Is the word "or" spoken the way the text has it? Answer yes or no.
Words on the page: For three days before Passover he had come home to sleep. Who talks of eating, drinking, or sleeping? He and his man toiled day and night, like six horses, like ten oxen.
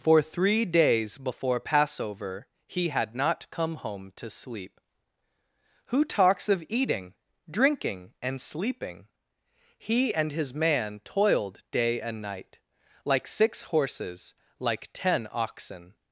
no